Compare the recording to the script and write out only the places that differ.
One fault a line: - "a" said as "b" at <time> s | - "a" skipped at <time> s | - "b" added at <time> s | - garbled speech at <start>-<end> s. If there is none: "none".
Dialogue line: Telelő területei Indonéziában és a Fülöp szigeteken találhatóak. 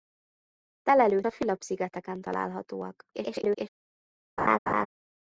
- "területei Indonéziában és" skipped at 1.2 s
- garbled speech at 3.1-3.7 s